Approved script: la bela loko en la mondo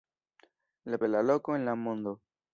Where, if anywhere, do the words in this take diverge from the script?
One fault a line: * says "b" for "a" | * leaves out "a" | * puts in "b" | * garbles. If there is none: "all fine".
all fine